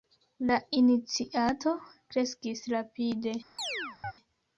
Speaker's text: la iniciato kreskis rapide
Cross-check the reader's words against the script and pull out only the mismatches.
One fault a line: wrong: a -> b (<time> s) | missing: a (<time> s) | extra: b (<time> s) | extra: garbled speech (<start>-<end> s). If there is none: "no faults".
no faults